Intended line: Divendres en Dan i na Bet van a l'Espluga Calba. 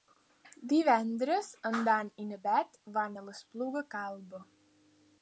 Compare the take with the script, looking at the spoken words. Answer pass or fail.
pass